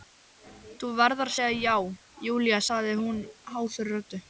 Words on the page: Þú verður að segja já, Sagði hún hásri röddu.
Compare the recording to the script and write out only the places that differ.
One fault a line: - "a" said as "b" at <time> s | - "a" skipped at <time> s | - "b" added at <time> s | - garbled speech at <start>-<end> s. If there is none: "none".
- "Júlía" added at 2.3 s